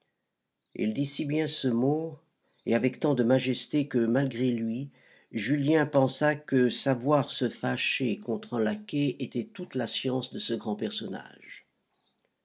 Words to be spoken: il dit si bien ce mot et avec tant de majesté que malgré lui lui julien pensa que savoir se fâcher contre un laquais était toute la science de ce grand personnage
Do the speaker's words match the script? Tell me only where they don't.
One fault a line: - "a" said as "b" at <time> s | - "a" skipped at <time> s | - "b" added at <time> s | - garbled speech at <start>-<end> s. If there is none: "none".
- "lui" skipped at 4.9 s